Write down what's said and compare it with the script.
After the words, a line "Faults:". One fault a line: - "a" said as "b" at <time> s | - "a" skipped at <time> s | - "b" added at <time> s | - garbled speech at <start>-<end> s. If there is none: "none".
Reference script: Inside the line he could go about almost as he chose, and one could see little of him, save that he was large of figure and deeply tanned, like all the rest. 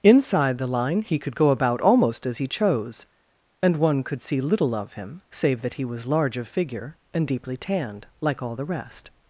Inside the line he could go about almost as he chose, and one could see little of him, save that he was large of figure and deeply tanned, like all the rest.
Faults:
none